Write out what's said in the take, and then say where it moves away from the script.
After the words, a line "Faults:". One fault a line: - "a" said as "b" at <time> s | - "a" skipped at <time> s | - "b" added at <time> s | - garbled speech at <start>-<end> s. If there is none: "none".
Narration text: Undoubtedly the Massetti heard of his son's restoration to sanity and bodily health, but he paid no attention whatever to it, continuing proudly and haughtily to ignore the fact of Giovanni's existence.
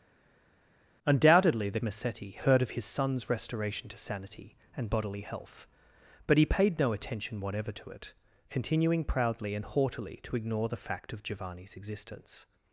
Undoubtedly the Massetti heard of his son's restoration to sanity and bodily health, but he paid no attention whatever to it, continuing proudly and haughtily to ignore the fact of Giovanni's existence.
Faults:
none